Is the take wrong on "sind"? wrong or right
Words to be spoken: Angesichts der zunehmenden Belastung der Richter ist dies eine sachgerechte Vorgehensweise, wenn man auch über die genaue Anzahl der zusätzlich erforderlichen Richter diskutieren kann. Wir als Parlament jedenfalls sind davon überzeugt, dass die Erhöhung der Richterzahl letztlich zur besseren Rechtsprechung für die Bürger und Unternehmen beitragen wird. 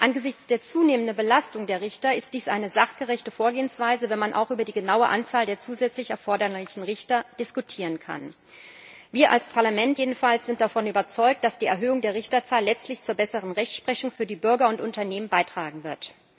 right